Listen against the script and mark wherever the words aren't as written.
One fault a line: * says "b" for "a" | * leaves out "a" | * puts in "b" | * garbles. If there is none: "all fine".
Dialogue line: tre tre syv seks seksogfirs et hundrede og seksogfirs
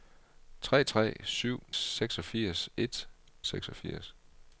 * leaves out "seks"
* leaves out "hundrede og"